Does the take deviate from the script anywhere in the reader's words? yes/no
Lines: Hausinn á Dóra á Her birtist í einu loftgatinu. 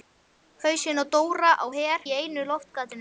yes